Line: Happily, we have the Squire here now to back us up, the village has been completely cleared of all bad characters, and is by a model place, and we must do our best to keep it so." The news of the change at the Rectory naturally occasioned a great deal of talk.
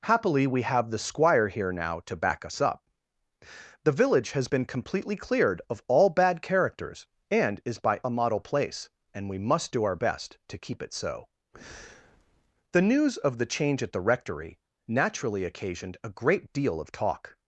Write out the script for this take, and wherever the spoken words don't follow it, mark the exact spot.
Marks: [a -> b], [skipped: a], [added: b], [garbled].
Happily, we have the Squire here now to back us up, the village has been completely cleared of all bad characters, and is by a model place, and we must do our best to keep it so." The news of the change at the Rectory naturally occasioned a great deal of talk.